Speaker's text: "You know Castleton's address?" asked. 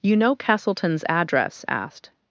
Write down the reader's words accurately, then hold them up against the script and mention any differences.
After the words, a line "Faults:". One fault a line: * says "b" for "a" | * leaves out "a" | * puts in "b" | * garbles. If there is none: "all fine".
"You know Castleton's address?" asked.
Faults:
all fine